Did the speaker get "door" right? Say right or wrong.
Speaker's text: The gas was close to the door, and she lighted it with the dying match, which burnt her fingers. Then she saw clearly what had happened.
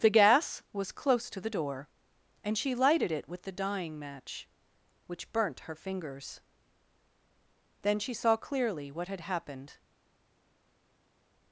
right